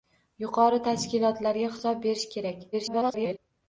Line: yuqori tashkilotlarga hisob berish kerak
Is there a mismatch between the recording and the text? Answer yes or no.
yes